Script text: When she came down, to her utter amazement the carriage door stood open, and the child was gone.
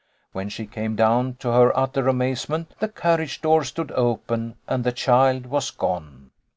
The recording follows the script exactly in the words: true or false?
true